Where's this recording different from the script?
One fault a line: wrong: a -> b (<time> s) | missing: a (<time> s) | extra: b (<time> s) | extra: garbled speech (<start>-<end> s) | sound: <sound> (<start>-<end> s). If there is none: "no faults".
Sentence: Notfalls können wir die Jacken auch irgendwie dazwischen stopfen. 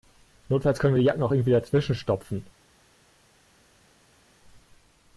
no faults